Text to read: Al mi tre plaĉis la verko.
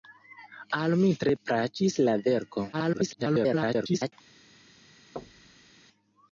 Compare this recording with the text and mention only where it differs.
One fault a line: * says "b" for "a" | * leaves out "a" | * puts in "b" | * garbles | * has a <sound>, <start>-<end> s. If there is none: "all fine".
* garbles
* has a thud, 5.2-5.7 s